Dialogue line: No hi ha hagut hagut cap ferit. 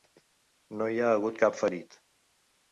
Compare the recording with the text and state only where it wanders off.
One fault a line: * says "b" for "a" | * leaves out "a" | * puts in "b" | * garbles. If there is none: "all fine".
* leaves out "hagut"